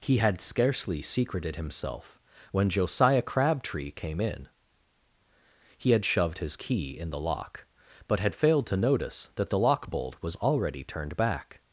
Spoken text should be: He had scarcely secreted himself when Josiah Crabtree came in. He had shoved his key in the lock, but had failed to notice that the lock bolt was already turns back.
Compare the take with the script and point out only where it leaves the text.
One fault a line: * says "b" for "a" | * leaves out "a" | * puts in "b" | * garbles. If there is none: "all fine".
* says "turned" for "turns"